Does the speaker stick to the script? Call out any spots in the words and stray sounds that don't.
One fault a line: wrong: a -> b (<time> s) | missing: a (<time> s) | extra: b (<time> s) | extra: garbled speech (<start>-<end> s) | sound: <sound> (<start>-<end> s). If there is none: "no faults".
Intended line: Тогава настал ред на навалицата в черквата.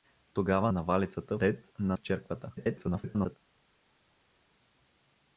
wrong: настал -> навалицата (0.7 s)
missing: навалицата (2.0 s)
extra: garbled speech (2.6-3.4 s)